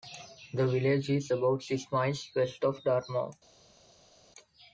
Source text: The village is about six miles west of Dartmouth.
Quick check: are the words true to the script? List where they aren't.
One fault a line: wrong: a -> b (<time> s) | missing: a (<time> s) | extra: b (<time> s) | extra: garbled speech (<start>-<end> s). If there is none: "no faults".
no faults